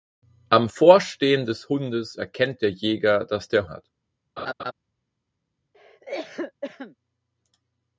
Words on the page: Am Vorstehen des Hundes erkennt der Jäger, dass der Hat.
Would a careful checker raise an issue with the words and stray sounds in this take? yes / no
yes